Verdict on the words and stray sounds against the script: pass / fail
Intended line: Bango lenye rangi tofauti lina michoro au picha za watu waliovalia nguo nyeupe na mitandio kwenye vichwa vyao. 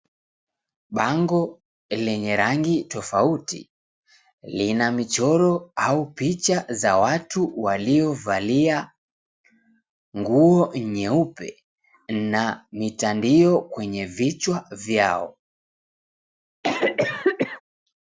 fail